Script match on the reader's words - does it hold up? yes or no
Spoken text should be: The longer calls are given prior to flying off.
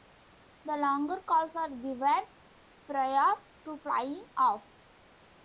yes